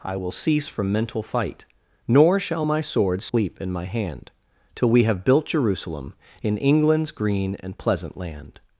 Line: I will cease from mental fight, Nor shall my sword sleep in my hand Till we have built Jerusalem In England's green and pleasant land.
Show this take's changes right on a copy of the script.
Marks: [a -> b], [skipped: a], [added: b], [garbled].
I will cease from mental fight, Nor shall my sword sleep in my hand Till we have built Jerusalem In England's green and pleasant land.